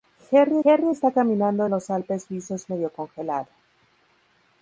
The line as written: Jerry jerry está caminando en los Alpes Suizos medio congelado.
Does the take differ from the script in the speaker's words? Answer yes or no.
no